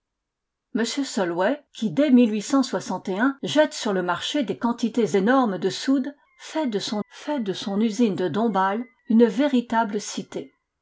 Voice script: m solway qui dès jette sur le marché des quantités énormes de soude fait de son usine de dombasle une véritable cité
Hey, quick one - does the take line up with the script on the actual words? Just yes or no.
no